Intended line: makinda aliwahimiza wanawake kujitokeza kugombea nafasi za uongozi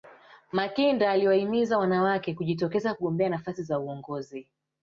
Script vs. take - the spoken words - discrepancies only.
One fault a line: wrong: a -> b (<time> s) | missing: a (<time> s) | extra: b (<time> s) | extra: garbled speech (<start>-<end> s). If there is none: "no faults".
no faults